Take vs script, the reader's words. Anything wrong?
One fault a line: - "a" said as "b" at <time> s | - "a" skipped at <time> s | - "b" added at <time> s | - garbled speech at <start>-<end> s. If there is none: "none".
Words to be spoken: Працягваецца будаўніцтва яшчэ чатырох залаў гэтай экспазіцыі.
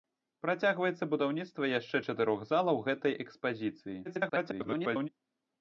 - garbled speech at 4.0-5.1 s